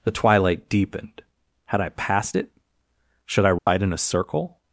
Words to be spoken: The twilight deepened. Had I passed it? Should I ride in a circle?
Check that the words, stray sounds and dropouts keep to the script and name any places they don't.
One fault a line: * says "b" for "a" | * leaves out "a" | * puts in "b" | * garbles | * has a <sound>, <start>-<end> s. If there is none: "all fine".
* has a dropout, 3.6-3.7 s